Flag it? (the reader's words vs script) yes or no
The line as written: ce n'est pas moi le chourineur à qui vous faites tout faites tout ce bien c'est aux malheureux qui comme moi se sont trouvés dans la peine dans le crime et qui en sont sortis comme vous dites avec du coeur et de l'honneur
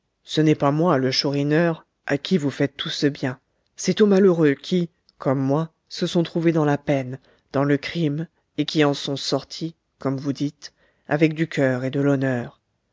yes